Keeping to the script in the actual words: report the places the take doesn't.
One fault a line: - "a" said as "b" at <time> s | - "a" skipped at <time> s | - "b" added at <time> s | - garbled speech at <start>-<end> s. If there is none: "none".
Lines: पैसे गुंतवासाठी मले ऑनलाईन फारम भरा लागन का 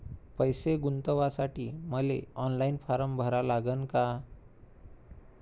none